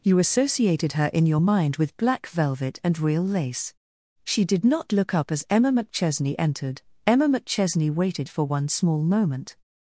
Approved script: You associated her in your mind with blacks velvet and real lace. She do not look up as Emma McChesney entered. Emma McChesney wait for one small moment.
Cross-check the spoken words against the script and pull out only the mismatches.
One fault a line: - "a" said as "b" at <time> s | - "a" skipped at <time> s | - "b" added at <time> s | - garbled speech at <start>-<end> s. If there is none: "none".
- "blacks" said as "black" at 2.0 s
- "do" said as "did" at 4.4 s
- "wait" said as "waited" at 7.9 s